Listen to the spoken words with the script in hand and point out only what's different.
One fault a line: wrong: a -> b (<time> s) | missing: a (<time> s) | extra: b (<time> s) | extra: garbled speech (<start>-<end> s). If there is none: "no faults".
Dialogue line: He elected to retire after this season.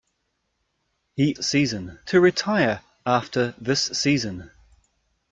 wrong: elected -> season (1.3 s)